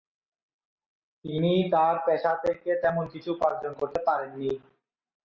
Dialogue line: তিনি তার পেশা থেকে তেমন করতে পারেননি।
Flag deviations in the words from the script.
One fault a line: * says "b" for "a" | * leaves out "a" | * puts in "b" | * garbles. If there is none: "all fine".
* puts in "কিছু উপার্জন"